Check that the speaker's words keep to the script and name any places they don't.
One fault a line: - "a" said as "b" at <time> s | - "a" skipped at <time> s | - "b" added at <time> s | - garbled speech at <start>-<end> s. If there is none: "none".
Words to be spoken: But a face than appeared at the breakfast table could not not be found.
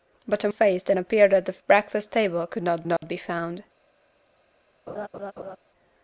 none